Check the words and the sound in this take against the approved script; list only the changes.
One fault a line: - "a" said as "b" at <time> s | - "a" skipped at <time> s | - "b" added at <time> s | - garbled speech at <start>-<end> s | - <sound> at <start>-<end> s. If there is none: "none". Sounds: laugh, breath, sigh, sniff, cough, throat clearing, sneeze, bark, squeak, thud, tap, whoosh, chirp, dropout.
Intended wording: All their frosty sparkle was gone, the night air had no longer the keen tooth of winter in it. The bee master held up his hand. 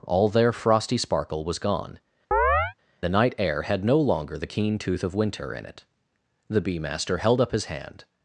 - chirp at 2.3-2.7 s